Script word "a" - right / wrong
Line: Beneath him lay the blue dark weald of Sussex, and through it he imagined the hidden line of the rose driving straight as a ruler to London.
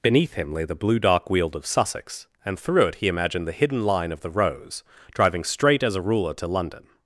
right